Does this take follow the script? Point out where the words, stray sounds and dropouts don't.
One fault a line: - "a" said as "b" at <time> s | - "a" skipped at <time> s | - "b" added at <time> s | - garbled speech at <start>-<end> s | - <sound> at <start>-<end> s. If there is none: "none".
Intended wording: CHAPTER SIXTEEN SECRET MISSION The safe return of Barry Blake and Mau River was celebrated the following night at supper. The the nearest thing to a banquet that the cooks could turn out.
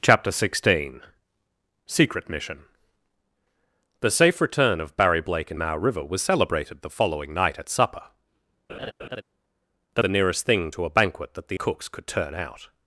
- laugh at 8.7-9.2 s